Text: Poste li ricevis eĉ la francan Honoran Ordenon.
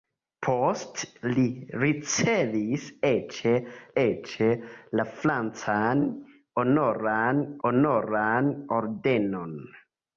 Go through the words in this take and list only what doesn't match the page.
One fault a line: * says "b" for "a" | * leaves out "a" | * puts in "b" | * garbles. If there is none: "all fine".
* puts in "eĉ"
* puts in "Honoran"